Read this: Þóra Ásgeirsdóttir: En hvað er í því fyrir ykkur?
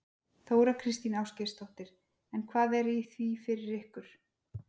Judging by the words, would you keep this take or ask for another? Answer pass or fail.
fail